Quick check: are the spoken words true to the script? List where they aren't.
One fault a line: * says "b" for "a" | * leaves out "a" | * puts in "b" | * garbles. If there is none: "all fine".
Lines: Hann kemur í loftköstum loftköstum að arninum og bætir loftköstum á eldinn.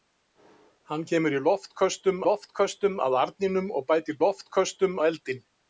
all fine